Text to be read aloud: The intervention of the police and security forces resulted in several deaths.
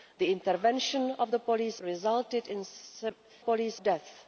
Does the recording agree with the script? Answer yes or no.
no